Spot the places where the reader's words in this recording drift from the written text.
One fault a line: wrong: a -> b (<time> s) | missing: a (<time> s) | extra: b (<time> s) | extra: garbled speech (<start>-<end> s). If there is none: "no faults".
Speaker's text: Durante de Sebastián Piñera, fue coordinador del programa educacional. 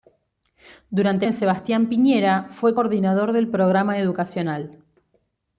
no faults